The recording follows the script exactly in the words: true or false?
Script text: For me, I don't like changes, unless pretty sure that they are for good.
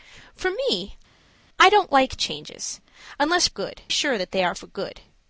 false